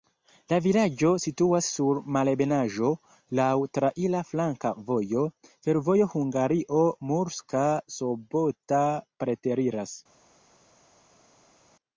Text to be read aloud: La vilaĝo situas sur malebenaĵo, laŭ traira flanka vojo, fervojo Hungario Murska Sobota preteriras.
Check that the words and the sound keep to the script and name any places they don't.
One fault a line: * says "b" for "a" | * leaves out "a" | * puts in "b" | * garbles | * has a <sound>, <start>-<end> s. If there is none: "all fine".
all fine